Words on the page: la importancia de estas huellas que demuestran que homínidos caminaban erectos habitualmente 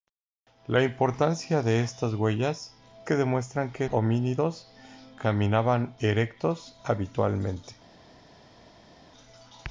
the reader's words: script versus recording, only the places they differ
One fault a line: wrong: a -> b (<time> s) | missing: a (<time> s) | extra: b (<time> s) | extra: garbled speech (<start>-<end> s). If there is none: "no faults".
no faults